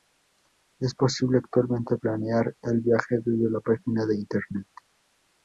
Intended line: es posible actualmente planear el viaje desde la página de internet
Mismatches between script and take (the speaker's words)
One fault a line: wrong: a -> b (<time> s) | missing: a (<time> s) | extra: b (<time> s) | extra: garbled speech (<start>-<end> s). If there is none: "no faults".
no faults